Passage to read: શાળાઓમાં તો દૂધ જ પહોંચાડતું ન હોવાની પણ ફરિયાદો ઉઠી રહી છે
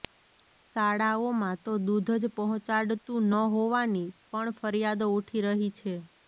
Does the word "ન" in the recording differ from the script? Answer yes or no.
no